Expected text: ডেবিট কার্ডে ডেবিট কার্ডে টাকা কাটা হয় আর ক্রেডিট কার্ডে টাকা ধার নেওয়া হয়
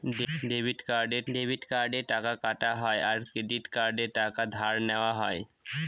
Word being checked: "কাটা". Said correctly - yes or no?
yes